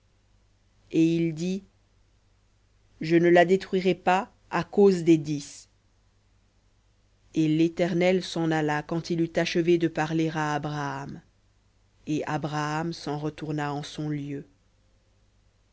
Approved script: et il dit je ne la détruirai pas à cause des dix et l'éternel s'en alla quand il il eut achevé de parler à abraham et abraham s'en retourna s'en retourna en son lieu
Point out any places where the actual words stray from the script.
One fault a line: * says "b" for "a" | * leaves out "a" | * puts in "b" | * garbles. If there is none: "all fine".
* leaves out "il"
* leaves out "s'en retourna"